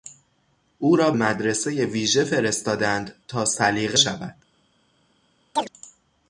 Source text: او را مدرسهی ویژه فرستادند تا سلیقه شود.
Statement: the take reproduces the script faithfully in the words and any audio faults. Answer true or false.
false